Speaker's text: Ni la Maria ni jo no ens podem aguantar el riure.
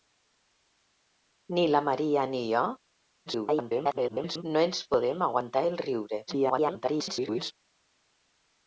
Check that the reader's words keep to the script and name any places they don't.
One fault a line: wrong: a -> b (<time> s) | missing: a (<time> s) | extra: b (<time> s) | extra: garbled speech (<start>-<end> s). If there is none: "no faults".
extra: garbled speech (3.3-4.4 s)
extra: garbled speech (6.3-7.5 s)